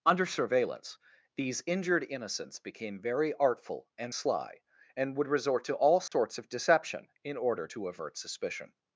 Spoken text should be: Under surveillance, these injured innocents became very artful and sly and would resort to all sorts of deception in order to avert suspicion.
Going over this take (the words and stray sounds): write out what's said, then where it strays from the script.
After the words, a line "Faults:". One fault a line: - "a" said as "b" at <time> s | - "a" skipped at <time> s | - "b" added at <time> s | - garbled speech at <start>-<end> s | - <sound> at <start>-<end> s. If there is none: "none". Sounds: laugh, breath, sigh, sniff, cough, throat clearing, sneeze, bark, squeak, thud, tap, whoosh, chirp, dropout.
Under surveillance, these injured innocents became very artful and sly and would resort to all sorts of deception in order to avert suspicion.
Faults:
- dropout at 6.1-6.1 s